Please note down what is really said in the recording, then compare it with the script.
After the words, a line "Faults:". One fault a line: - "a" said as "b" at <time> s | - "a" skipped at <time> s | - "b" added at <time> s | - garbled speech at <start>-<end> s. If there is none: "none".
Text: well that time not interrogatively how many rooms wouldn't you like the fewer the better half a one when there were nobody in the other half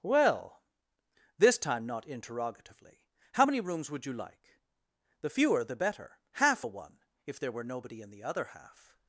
well this time not interrogatively how many rooms would you like the fewer the better half a one if there were nobody in the other half
Faults:
- "that" said as "this" at 1.4 s
- "wouldn't" said as "would" at 3.9 s
- "when" said as "if" at 7.3 s